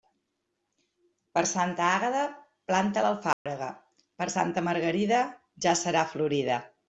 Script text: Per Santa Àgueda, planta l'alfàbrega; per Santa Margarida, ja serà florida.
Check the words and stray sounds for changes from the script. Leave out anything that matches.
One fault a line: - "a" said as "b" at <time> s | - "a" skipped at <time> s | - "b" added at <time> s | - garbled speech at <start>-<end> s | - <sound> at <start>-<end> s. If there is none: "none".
- dropout at 3.3-3.5 s